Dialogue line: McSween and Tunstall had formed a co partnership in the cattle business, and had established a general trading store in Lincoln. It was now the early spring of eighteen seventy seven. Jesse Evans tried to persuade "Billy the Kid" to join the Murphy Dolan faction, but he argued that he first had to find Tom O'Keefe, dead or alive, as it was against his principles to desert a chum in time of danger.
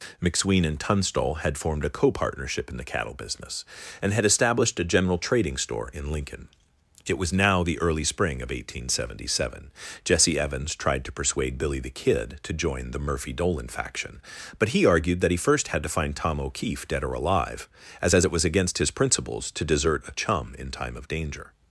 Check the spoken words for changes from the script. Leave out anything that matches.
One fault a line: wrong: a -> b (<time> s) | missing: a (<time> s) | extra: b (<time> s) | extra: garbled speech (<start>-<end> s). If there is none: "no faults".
extra: as (18.1 s)